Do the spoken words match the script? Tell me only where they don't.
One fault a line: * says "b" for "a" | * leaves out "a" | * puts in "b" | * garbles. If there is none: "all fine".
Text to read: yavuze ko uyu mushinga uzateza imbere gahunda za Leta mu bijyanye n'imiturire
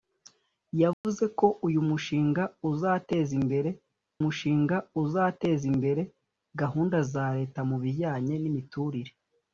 * puts in "mushinga uzateza imbere"